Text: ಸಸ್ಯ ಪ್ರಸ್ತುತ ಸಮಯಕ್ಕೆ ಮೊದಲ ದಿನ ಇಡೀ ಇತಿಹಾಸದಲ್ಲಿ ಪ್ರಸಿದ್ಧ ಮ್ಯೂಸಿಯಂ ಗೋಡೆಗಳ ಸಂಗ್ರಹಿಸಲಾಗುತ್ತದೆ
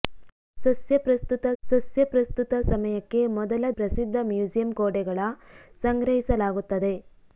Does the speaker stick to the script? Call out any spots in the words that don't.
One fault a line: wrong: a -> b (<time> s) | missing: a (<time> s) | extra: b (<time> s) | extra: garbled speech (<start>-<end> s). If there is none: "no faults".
extra: ಸಸ್ಯ ಪ್ರಸ್ತುತ (1.6 s)
missing: ದಿನ ಇಡೀ ಇತಿಹಾಸದಲ್ಲಿ (3.7 s)